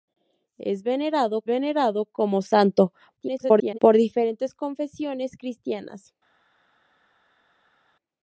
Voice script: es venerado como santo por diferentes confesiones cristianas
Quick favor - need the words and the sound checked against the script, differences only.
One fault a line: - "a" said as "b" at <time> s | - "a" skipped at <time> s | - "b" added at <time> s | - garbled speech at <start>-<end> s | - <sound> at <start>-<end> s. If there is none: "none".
- "venerado" added at 1.4 s
- garbled speech at 3.2-3.8 s